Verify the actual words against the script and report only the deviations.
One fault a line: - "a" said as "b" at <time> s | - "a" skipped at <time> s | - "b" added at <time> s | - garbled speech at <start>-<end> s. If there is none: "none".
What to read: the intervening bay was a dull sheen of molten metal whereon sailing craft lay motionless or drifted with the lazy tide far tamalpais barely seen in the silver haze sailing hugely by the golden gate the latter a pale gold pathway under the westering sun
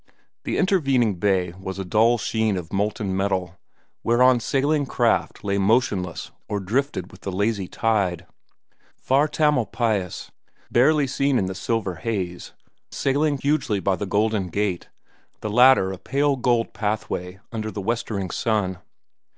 none